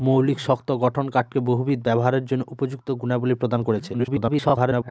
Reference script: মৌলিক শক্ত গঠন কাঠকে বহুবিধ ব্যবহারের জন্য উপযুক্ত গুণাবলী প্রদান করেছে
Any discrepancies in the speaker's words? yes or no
yes